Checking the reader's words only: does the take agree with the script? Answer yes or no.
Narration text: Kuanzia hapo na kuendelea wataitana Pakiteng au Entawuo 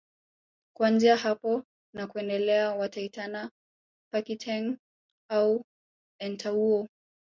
yes